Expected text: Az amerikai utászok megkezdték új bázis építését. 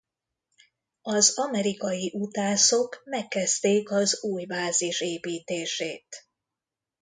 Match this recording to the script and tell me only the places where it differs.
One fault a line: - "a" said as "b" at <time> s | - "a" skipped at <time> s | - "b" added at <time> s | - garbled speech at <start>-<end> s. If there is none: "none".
- "az" added at 3.9 s